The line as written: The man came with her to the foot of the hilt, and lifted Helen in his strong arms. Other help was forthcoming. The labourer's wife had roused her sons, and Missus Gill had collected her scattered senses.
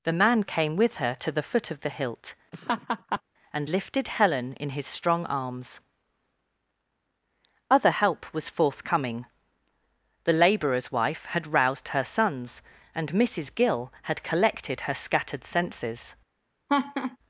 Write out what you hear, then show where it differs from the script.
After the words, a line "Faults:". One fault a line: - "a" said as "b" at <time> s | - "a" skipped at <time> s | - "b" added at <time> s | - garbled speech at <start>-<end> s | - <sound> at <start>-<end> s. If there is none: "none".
The man came with her to the foot of the hilt, and lifted Helen in his strong arms. Other help was forthcoming. The labourer's wife had roused her sons, and Missus Gill had collected her scattered senses.
Faults:
- laugh at 2.5-3.2 s
- laugh at 16.7-17.2 s